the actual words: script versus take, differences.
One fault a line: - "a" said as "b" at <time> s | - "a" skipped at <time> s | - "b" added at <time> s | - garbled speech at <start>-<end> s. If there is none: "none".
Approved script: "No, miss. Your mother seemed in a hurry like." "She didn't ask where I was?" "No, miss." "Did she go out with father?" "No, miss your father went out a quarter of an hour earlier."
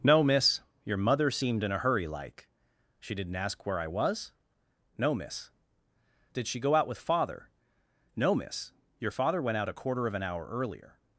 none